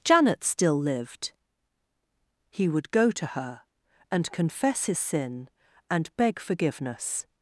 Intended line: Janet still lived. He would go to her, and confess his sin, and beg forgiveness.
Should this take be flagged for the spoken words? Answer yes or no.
no